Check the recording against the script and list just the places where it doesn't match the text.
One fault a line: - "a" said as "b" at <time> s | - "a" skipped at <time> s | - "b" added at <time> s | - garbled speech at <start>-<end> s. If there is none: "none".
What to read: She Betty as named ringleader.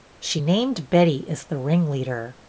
- "named" added at 0.4 s
- "named" said as "the" at 1.4 s